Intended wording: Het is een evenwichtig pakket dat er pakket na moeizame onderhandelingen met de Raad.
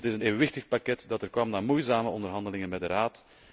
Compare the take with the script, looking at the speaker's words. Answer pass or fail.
fail